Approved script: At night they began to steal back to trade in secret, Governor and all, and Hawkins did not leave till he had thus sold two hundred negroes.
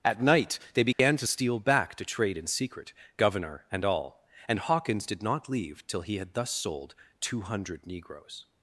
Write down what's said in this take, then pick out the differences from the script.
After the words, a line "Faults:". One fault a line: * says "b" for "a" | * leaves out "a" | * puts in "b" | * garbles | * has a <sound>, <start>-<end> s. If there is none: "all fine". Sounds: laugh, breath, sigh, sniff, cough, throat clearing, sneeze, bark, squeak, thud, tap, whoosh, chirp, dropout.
At night they began to steal back to trade in secret, Governor and all, and Hawkins did not leave till he had thus sold two hundred negroes.
Faults:
* has a dropout, 0.9-1.0 s